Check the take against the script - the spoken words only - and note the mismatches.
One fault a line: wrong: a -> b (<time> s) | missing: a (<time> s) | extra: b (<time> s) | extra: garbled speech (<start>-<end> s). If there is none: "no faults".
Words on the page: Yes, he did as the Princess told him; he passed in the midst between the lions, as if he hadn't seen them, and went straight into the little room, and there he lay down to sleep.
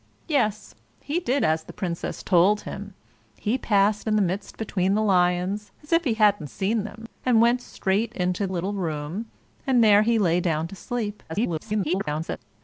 missing: the (8.5 s)
extra: garbled speech (11.3-12.4 s)